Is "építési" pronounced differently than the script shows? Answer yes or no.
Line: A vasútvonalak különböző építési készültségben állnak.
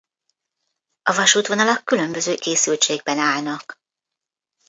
yes